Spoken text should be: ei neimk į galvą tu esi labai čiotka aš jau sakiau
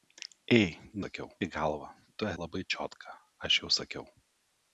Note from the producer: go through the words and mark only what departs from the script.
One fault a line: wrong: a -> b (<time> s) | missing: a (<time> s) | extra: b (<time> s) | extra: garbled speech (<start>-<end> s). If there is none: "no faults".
wrong: neimk -> sakiau (1.1 s)
missing: esi (2.3 s)